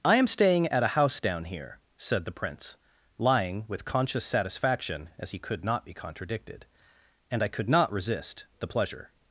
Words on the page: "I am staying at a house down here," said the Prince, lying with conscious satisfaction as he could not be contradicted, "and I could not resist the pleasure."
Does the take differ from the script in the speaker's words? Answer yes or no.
no